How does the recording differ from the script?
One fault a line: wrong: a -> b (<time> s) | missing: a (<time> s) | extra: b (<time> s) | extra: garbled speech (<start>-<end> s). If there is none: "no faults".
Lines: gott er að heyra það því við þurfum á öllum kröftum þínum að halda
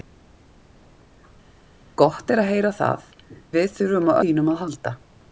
missing: því (3.0 s)
missing: öllum kröftum (4.1 s)